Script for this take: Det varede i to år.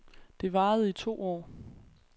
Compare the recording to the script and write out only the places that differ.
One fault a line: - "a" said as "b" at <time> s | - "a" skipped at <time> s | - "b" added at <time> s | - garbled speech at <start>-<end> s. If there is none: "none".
none